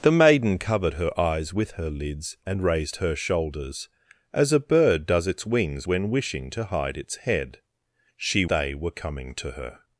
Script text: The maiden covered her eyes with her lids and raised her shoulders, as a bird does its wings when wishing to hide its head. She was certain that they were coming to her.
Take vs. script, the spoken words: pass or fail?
fail